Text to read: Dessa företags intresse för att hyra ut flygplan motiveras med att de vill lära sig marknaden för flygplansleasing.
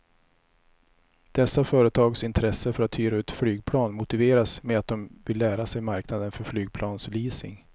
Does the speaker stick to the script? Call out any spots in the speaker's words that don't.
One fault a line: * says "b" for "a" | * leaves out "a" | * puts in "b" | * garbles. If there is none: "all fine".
all fine